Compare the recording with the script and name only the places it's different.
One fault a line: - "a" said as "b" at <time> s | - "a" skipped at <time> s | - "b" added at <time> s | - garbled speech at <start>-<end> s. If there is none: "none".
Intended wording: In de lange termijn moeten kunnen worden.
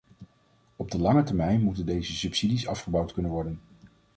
- "In" said as "Op" at 0.8 s
- "deze subsidies afgebouwd" added at 1.9 s